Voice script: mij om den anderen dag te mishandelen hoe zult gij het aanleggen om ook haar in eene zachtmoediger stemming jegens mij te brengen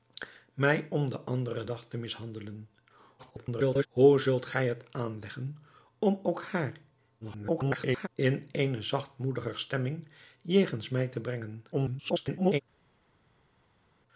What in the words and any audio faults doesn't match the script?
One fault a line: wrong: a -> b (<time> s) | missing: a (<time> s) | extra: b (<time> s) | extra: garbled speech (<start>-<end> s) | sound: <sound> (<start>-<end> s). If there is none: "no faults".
extra: garbled speech (3.2-3.9 s)
extra: garbled speech (7.2-8.1 s)
extra: garbled speech (11.7-12.6 s)